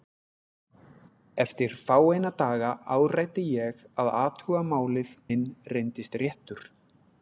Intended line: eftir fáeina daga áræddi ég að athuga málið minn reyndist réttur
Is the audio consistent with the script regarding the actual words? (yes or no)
yes